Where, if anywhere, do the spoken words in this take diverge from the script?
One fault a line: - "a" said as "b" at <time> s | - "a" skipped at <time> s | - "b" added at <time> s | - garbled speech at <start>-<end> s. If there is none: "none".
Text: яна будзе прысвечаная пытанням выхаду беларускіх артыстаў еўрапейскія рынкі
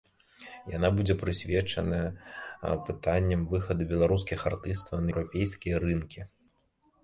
none